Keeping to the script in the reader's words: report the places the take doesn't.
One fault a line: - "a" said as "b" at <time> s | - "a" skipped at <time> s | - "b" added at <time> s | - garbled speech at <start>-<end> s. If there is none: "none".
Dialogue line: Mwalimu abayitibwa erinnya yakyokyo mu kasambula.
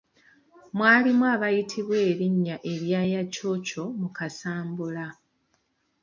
- "erya" added at 2.7 s